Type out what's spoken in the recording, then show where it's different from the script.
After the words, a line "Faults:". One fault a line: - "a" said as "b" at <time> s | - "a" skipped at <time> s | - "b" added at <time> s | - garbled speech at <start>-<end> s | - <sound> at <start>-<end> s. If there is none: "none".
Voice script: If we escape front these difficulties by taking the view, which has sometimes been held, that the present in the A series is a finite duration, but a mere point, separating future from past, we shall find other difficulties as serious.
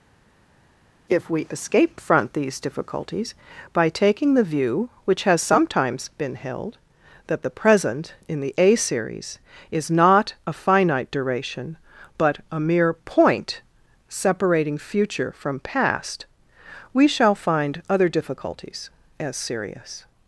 If we escape front these difficulties by taking the view, which has sometimes been held, that the present in the A series is not a finite duration, but a mere point, separating future from past, we shall find other difficulties as serious.
Faults:
- "not" added at 9.9 s